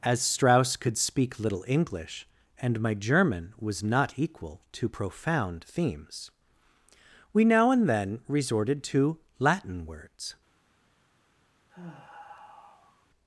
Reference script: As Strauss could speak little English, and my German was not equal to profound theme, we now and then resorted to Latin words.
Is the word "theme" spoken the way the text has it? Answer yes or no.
no